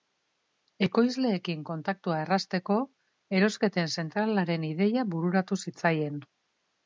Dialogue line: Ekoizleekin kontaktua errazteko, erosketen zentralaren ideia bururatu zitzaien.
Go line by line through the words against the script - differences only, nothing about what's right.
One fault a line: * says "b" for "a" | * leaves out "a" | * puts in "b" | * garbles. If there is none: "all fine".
all fine